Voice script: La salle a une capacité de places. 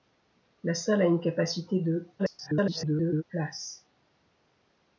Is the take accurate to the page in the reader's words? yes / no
no